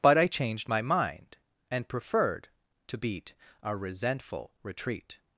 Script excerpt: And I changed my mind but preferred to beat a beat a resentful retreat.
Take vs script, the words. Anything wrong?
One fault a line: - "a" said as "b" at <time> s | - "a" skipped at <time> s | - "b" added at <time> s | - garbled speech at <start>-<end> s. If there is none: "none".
- "And" said as "But" at 0.0 s
- "but" said as "and" at 1.7 s
- "beat a" skipped at 3.7 s